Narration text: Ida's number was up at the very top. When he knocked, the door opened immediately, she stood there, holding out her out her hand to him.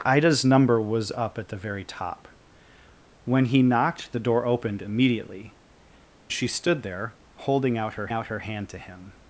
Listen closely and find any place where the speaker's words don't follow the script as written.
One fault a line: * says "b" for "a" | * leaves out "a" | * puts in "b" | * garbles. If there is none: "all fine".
all fine